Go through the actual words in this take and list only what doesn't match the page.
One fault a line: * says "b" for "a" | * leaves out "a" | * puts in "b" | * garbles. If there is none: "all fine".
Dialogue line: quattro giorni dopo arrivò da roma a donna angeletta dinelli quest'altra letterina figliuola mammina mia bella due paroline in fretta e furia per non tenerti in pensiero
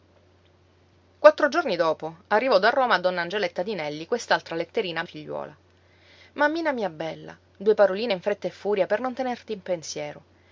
all fine